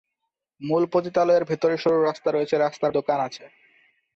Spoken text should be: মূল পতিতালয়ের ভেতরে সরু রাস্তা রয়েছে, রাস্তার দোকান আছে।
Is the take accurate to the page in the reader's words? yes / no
yes